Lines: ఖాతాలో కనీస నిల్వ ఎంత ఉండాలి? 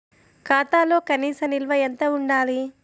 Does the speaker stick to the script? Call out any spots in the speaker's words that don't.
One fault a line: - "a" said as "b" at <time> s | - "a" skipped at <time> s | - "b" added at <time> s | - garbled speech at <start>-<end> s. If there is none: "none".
none